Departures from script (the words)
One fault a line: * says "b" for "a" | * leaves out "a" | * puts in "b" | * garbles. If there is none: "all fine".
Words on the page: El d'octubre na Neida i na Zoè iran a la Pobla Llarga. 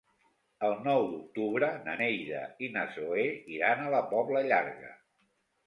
* puts in "nou"